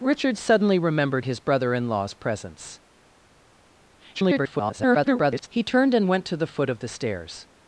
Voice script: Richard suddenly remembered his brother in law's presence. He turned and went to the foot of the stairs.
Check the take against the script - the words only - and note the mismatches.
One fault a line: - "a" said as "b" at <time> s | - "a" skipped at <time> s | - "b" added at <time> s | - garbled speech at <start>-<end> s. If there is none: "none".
- garbled speech at 4.1-5.5 s